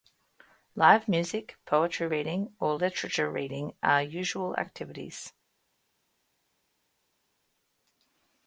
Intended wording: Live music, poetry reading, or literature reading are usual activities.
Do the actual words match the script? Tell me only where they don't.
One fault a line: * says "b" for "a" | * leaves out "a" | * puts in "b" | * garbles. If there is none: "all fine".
all fine